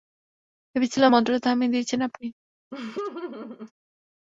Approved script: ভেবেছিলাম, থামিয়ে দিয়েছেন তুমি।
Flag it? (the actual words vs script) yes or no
yes